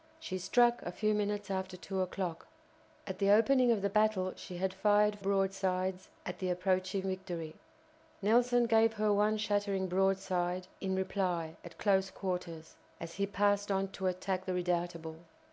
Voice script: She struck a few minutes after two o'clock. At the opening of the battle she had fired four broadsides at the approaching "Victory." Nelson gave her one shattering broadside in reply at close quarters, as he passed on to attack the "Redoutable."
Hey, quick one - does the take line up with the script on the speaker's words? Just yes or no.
no